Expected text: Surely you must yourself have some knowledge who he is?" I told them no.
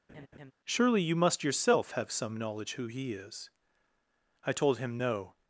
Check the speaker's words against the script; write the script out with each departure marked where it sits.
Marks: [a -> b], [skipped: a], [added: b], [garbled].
Surely you must yourself have some knowledge who he is?" I told [them -> him] no.